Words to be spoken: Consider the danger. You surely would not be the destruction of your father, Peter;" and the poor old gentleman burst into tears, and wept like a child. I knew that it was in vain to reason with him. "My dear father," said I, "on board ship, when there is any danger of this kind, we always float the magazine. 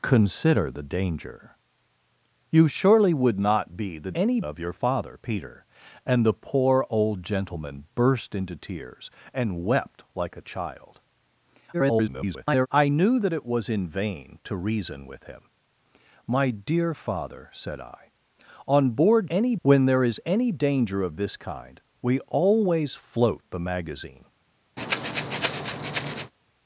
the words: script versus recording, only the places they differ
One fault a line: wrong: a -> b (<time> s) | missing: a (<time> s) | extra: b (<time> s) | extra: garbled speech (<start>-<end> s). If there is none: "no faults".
wrong: destruction -> any (4.1 s)
extra: garbled speech (11.7-12.7 s)
wrong: ship -> any (19.3 s)